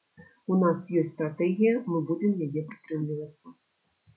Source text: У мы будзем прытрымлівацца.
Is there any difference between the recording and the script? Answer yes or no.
yes